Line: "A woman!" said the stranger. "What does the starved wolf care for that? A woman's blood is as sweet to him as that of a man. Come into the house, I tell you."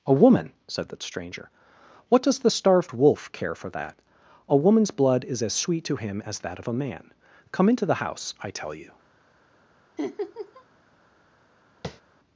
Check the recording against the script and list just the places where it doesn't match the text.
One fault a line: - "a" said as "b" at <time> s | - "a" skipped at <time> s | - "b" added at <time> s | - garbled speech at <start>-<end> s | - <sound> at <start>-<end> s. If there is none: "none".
- laugh at 10.0-10.6 s
- tap at 11.8-12.0 s